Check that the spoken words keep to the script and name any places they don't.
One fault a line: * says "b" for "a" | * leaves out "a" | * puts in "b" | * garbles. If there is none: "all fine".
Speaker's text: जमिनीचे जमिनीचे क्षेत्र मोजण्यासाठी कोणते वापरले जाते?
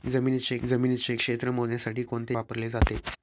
all fine